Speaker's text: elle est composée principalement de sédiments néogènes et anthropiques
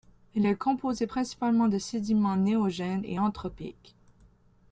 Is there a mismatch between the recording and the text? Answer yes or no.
no